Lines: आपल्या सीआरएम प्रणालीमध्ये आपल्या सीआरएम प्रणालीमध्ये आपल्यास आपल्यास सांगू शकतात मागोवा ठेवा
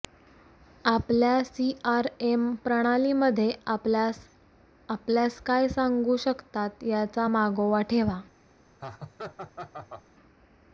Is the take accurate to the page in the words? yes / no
no